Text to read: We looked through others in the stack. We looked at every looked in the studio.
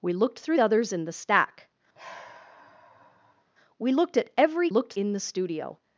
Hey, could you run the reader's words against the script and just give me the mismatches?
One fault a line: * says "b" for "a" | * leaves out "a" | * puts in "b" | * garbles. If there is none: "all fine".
all fine